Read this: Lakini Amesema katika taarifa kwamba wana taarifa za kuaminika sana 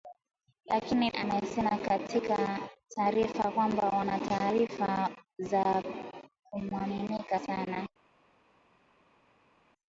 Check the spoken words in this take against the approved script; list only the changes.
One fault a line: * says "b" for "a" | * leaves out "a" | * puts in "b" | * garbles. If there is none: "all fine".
all fine